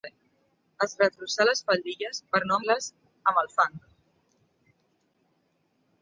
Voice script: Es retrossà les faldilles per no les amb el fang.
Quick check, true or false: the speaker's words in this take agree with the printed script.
true